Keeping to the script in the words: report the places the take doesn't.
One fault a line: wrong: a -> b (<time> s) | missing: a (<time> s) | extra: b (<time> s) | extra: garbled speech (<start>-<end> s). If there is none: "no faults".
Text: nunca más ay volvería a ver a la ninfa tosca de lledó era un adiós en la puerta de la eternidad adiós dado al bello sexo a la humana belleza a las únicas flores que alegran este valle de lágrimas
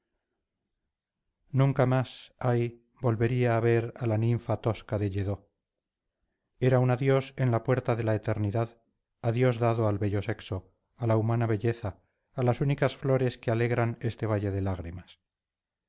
no faults